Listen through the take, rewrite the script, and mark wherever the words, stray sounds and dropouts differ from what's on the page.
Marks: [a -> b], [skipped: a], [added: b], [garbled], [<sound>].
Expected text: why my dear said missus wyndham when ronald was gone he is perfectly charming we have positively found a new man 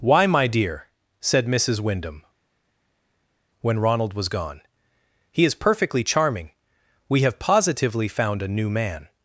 why my dear said missus wyndham when ronald was gone he is perfectly charming we have positively found a new man